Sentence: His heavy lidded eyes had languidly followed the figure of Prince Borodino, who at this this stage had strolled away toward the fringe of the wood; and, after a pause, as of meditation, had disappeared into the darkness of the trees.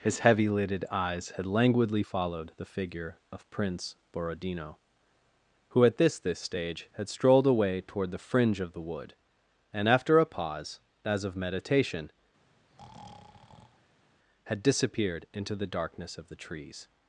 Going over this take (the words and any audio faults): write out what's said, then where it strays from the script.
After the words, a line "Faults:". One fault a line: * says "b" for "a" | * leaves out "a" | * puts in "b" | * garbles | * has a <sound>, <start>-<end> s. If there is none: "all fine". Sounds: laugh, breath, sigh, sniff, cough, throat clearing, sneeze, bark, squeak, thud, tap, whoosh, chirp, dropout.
His heavy lidded eyes had languidly followed the figure of Prince Borodino, who at this this stage had strolled away toward the fringe of the wood; and, after a pause, as of meditation, had disappeared into the darkness of the trees.
Faults:
* has a breath, 12.5-14.0 s